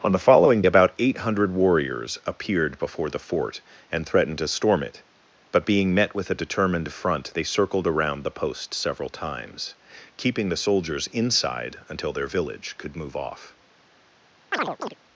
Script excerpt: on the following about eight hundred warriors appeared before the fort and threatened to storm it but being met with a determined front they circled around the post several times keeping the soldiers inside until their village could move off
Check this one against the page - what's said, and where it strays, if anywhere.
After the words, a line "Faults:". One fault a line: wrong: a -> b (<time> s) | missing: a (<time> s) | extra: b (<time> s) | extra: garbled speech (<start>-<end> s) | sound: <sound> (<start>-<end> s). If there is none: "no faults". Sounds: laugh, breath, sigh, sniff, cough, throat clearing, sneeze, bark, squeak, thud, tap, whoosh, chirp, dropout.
on the following about eight hundred warriors appeared before the fort and threatened to storm it but being met with a determined front they circled around the post several times keeping the soldiers inside until their village could move off
Faults:
sound: chirp (14.5-14.9 s)